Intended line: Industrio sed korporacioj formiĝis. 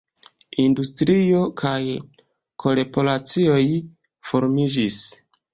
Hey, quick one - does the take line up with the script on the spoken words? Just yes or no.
no